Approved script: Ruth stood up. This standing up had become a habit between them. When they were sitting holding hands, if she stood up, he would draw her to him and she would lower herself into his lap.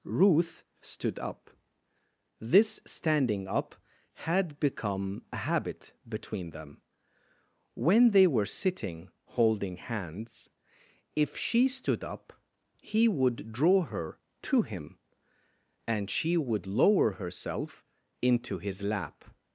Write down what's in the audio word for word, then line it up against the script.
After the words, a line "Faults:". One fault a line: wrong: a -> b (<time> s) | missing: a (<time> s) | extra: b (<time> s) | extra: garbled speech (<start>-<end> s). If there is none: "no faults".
Ruth stood up. This standing up had become a habit between them. When they were sitting holding hands, if she stood up, he would draw her to him and she would lower herself into his lap.
Faults:
no faults